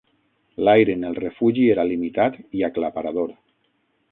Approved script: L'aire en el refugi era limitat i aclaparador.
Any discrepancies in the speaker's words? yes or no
no